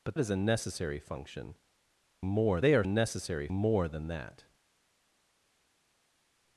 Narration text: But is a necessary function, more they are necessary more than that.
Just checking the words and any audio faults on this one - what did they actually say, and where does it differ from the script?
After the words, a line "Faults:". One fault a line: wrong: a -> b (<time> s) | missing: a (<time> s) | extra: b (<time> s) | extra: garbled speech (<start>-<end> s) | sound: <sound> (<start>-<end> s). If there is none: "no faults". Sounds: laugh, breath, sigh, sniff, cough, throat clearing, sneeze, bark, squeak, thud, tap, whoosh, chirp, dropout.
But is a necessary function, more they are necessary more than that.
Faults:
no faults